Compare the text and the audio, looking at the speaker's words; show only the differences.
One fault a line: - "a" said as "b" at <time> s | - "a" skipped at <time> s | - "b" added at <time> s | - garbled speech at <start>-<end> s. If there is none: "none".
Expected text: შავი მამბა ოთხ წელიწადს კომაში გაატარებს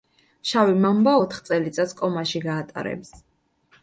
none